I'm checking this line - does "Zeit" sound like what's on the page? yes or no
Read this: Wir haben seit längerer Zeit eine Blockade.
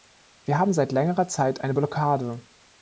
yes